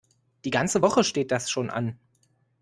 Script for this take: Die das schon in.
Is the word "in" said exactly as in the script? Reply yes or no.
no